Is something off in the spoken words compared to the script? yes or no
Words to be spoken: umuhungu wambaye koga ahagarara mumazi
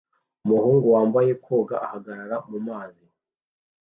no